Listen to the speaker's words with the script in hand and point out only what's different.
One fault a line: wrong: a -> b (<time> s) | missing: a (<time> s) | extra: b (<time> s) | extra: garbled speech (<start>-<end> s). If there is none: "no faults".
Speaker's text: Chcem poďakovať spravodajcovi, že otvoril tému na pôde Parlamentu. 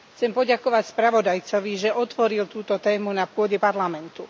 extra: túto (2.5 s)